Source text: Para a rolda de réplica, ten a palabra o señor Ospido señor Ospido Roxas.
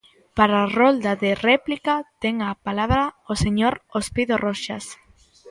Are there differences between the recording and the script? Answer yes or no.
yes